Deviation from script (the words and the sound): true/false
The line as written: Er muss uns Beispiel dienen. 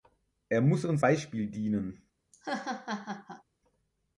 true